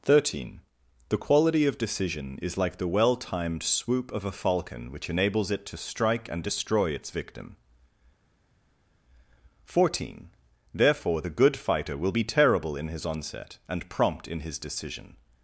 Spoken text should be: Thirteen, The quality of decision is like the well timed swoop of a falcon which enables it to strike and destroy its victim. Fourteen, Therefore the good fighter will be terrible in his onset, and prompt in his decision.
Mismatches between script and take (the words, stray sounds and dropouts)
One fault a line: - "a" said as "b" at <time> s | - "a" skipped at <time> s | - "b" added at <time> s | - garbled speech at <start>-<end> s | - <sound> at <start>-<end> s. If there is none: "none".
none